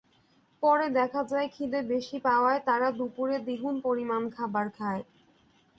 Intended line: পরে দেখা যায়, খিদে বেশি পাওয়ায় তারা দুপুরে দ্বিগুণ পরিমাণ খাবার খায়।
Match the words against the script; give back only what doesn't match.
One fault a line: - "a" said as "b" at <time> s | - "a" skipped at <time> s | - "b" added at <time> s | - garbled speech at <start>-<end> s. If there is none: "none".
none